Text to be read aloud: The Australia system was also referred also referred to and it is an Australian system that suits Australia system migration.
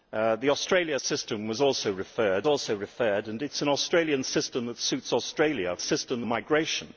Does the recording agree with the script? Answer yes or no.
yes